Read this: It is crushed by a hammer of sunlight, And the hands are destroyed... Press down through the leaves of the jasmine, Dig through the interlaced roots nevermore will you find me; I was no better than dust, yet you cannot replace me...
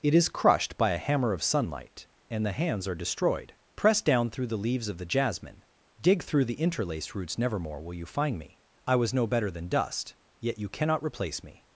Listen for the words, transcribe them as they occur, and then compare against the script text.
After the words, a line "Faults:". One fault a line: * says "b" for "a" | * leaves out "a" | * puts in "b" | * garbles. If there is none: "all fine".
It is crushed by a hammer of sunlight, And the hands are destroyed... Press down through the leaves of the jasmine, Dig through the interlaced roots nevermore will you find me; I was no better than dust, yet you cannot replace me...
Faults:
all fine